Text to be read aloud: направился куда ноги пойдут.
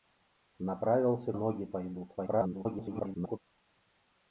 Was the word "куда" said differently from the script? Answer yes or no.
yes